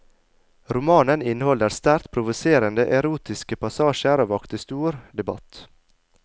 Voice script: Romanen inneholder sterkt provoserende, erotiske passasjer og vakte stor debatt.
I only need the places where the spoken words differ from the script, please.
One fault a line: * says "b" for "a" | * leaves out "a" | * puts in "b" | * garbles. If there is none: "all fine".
all fine